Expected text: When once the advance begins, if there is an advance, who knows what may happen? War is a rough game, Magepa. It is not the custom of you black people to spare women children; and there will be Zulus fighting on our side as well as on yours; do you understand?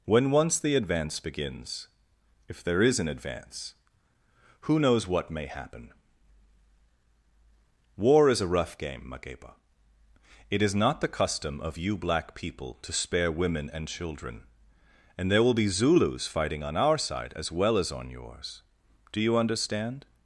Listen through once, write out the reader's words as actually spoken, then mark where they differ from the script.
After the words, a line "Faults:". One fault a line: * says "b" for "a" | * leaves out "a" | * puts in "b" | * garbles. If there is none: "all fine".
When once the advance begins, if there is an advance, who knows what may happen? War is a rough game, Magepa. It is not the custom of you black people to spare women and children; and there will be Zulus fighting on our side as well as on yours; do you understand?
Faults:
* puts in "and"